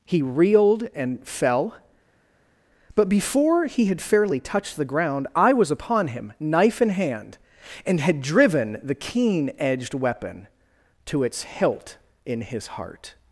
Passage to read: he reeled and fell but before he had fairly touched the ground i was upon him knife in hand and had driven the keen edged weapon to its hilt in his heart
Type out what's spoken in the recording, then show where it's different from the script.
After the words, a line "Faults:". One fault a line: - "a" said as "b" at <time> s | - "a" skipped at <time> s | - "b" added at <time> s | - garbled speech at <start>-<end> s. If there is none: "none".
he reeled and fell but before he had fairly touched the ground i was upon him knife in hand and had driven the keen edged weapon to its hilt in his heart
Faults:
none